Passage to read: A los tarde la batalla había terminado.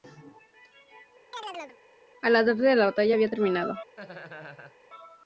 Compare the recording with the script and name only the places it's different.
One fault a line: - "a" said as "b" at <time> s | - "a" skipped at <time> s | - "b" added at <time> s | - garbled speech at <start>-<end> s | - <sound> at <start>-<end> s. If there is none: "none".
- chirp at 1.3-1.8 s
- "los" said as "la" at 2.3 s
- laugh at 4.0-4.8 s